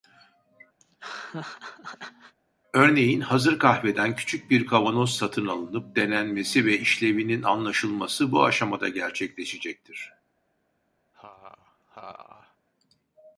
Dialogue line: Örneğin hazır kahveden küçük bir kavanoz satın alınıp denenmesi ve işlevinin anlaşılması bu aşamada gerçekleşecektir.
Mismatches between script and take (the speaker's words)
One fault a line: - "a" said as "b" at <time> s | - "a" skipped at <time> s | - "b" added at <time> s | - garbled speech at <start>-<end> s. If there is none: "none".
none